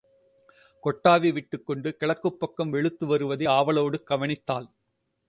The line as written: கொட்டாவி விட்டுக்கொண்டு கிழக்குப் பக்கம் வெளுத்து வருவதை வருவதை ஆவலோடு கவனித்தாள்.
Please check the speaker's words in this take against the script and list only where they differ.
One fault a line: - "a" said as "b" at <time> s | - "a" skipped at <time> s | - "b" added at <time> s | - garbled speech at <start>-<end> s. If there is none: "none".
- "வருவதை" skipped at 3.5 s